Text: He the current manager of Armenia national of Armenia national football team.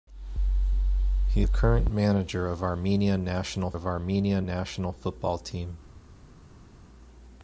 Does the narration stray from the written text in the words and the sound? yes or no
no